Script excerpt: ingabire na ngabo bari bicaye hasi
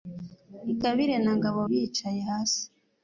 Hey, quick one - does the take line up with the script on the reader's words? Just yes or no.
no